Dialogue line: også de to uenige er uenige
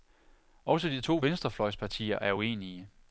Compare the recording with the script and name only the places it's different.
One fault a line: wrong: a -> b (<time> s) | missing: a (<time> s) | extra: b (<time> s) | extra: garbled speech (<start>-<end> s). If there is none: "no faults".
wrong: uenige -> venstrefløjspartier (1.2 s)